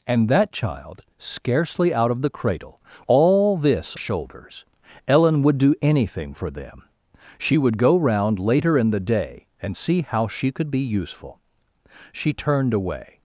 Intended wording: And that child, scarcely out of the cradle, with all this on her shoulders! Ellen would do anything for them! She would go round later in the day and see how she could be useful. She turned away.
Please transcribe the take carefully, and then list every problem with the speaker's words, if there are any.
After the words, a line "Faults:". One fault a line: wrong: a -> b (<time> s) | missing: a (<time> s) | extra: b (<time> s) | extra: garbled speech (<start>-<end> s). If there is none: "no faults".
And that child, scarcely out of the cradle, all this shoulders! Ellen would do anything for them! She would go round later in the day and see how she could be useful. She turned away.
Faults:
missing: with (2.8 s)
missing: on her (4.0 s)